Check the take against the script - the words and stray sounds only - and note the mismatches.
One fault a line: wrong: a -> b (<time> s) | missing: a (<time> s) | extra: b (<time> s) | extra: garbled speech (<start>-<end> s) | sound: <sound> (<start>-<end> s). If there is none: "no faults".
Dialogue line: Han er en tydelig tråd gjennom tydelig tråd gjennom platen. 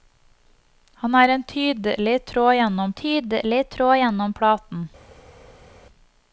no faults